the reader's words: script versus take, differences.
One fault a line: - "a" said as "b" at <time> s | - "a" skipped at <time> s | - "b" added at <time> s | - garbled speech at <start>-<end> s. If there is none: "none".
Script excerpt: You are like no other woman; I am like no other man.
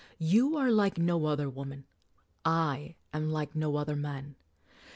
none